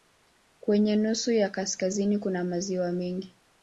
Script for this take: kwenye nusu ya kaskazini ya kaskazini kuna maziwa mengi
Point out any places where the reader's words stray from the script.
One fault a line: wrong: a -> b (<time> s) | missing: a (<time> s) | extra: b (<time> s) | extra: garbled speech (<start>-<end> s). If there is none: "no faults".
missing: ya kaskazini (2.2 s)